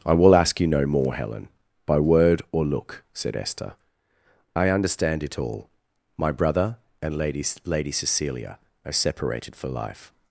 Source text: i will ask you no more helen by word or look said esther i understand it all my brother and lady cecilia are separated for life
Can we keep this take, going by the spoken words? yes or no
no